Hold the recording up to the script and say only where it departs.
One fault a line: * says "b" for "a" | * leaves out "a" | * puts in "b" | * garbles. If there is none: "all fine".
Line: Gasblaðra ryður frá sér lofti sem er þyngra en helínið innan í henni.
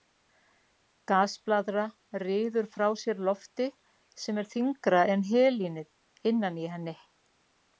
all fine